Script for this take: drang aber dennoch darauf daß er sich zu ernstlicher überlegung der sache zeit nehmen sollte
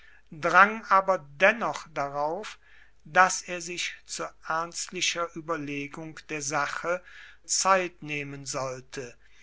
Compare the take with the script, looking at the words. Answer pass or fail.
pass